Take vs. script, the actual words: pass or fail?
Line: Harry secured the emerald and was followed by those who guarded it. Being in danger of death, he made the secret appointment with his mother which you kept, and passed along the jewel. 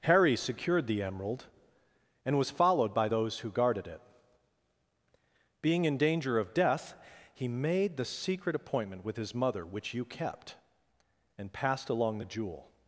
pass